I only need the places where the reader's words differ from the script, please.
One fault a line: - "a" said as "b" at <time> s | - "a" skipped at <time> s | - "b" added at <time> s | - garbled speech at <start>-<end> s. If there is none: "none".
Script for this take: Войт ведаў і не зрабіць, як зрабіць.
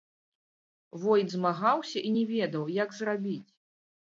- "ведаў" said as "змагаўся" at 1.3 s
- "зрабіць" said as "ведаў" at 2.4 s